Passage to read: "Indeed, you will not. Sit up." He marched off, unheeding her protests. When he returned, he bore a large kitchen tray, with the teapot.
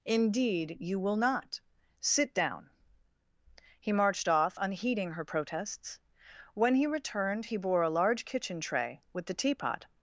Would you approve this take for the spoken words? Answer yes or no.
no